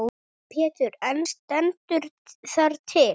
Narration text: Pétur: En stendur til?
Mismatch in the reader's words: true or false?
true